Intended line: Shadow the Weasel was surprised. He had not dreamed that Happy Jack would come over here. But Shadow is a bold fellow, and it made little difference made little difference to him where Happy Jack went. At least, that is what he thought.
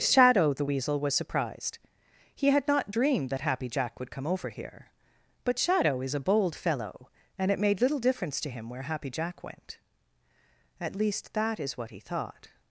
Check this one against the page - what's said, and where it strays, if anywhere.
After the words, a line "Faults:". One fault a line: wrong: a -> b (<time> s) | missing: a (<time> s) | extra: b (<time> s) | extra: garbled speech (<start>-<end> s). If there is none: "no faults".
Shadow the Weasel was surprised. He had not dreamed that Happy Jack would come over here. But Shadow is a bold fellow, and it made little difference to him where Happy Jack went. At least, that is what he thought.
Faults:
missing: made little difference (8.4 s)